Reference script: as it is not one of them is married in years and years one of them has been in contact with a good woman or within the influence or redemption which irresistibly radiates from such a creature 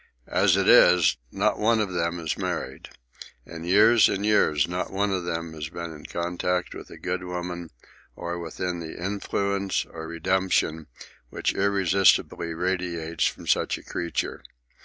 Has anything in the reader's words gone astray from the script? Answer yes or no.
yes